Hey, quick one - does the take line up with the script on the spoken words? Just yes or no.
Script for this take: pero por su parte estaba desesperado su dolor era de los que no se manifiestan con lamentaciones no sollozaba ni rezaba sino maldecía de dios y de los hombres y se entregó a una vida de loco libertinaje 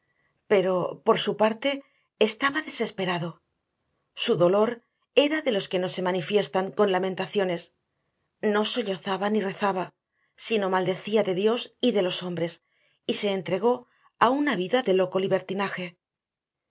yes